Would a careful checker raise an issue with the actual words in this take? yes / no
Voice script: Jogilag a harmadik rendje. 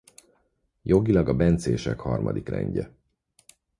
yes